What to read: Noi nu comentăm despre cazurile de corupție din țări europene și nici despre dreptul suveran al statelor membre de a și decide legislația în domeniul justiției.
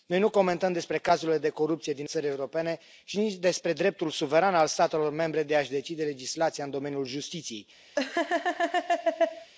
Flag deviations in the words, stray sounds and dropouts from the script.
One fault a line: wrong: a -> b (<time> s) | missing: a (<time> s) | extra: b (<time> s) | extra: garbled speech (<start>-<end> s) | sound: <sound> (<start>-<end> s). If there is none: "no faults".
sound: laugh (8.0-9.5 s)